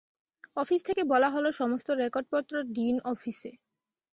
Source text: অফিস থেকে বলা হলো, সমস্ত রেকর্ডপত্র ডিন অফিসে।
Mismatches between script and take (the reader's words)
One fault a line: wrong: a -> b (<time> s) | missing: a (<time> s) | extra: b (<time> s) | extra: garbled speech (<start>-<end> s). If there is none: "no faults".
no faults